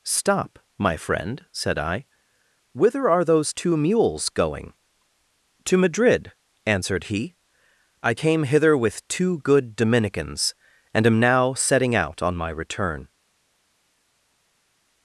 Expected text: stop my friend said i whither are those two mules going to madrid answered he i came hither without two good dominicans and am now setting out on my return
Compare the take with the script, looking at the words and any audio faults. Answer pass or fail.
fail